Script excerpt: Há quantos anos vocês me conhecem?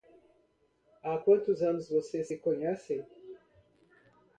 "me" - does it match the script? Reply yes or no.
no